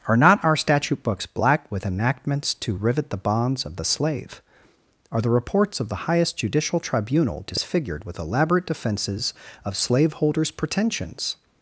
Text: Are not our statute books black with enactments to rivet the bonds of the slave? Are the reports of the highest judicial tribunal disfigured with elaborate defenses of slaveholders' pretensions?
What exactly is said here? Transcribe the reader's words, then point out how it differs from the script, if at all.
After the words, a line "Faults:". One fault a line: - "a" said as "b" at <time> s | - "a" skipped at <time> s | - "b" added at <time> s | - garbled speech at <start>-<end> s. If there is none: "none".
Are not our statute books black with enactments to rivet the bonds of the slave? Are the reports of the highest judicial tribunal disfigured with elaborate defenses of slaveholders' pretensions?
Faults:
none